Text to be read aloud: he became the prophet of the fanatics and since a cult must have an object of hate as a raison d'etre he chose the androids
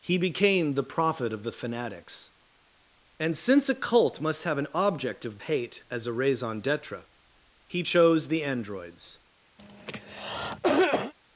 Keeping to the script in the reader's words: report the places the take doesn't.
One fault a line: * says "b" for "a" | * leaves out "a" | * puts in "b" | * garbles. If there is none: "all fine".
all fine